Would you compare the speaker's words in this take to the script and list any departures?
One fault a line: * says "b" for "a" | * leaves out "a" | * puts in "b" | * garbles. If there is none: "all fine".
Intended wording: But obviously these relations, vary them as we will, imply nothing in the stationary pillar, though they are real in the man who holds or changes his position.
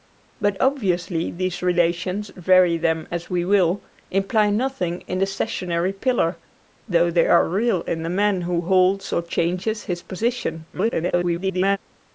* garbles